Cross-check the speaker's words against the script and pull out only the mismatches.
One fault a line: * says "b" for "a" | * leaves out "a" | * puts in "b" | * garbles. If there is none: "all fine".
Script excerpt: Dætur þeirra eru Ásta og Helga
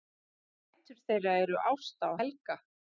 all fine